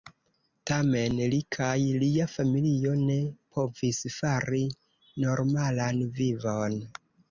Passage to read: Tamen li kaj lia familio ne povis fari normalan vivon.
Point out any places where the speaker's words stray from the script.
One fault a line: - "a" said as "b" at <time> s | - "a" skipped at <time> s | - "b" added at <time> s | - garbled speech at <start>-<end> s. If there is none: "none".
none